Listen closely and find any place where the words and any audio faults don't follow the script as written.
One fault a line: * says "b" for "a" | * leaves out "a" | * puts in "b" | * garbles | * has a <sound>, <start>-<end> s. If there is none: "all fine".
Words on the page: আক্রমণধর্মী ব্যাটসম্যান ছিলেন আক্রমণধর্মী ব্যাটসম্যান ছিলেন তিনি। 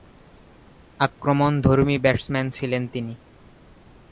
* leaves out "আক্রমণধর্মী ব্যাটসম্যান ছিলেন"